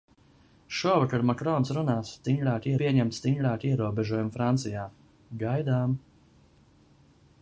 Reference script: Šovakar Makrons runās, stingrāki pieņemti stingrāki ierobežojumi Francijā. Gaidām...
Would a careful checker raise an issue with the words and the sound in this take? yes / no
no